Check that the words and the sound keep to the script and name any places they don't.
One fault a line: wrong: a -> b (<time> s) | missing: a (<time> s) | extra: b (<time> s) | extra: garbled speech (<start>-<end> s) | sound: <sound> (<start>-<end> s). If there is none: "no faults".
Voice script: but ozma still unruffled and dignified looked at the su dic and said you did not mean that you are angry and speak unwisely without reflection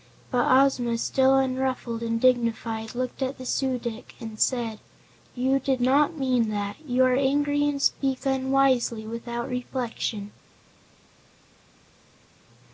no faults